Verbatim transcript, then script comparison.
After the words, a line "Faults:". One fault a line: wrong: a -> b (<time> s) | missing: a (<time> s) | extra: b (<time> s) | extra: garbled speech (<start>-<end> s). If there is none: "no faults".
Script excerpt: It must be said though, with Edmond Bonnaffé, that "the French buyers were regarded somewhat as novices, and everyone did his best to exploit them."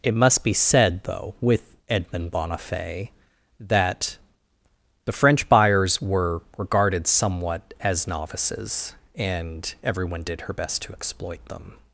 It must be said though, with Edmond Bonnaffé, that "the French buyers were regarded somewhat as novices, and everyone did her best to exploit them."
Faults:
wrong: his -> her (10.4 s)